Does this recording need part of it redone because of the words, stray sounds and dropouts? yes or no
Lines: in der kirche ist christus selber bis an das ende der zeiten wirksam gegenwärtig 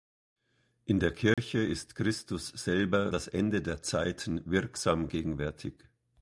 yes